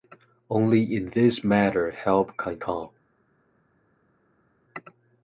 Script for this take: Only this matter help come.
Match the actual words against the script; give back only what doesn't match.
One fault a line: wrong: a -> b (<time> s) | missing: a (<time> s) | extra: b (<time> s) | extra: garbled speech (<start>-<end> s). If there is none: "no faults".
extra: in (0.9 s)
extra: can (2.4 s)